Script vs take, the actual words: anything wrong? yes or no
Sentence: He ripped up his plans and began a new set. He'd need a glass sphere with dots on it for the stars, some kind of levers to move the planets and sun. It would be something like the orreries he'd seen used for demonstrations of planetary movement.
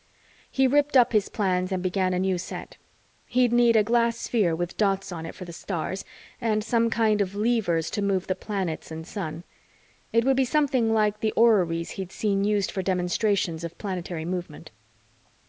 yes